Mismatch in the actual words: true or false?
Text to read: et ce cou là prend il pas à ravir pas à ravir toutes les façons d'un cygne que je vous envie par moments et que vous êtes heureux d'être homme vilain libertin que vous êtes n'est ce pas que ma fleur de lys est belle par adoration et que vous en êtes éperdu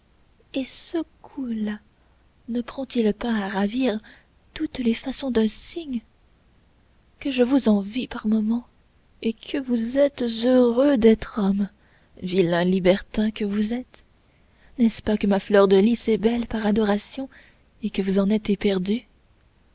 true